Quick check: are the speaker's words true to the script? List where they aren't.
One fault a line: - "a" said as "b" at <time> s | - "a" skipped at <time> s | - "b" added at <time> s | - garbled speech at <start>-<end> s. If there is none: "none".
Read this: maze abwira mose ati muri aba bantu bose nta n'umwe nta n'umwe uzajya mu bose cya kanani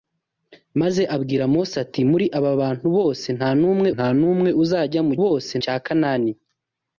none